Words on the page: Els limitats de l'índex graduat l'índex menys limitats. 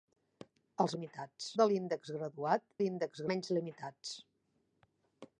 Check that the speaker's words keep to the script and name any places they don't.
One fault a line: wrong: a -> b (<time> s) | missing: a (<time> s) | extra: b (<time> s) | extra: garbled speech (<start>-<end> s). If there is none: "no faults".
no faults